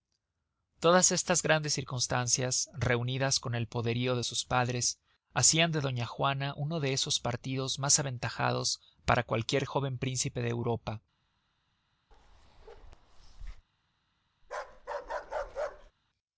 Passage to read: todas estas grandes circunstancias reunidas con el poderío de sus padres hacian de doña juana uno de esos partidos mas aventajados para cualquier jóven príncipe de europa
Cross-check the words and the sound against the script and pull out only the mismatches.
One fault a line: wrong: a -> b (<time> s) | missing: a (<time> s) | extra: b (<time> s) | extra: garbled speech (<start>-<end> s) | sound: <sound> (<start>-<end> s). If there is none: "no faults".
sound: bark (12.1-13.7 s)
sound: bark (14.4-15.9 s)